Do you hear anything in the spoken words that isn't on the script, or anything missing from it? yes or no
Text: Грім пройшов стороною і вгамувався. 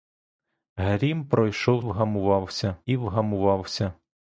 yes